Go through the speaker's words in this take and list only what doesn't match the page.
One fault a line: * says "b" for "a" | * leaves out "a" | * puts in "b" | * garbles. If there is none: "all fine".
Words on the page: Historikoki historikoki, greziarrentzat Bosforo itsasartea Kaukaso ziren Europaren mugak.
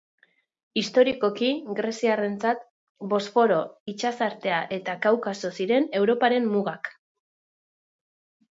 * leaves out "historikoki"
* puts in "eta"